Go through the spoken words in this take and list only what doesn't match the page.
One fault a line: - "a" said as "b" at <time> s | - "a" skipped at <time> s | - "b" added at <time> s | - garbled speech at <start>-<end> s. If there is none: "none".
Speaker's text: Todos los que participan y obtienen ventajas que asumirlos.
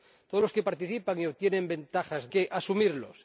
none